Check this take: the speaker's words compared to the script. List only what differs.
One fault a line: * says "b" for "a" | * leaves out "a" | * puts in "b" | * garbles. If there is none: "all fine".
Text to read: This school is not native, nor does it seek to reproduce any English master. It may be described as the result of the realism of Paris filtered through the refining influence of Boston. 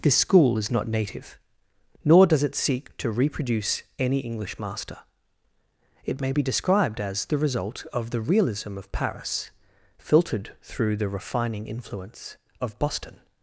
all fine